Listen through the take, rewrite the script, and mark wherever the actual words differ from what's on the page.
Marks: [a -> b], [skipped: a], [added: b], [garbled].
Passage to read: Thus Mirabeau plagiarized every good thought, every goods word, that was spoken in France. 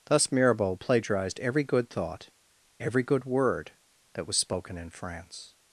Thus Mirabeau plagiarized every good thought, every [goods -> good] word, that was spoken in France.